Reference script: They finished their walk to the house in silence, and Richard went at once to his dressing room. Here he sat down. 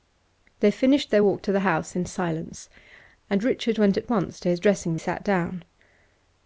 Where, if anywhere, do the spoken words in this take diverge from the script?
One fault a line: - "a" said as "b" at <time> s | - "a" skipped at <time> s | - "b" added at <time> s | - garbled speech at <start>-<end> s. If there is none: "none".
- "room Here he" skipped at 5.0 s